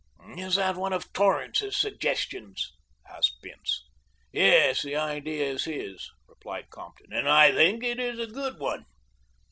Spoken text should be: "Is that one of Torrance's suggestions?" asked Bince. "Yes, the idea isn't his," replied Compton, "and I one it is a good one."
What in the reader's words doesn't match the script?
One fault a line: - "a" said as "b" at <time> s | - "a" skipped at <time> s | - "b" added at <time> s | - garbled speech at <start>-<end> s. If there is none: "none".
- "isn't" said as "is" at 5.5 s
- "one" said as "think" at 7.5 s